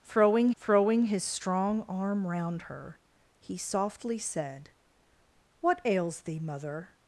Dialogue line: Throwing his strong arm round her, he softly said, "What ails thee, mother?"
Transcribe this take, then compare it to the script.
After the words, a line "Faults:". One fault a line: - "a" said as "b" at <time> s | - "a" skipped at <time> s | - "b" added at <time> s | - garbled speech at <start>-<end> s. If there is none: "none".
Throwing throwing his strong arm round her, he softly said, "What ails thee, mother?"
Faults:
- "throwing" added at 0.5 s